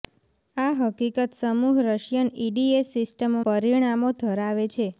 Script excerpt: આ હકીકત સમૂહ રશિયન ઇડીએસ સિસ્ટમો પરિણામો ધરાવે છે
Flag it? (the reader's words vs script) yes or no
no